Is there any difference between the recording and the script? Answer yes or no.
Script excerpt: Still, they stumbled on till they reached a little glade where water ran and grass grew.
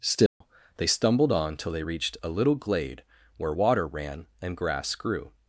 no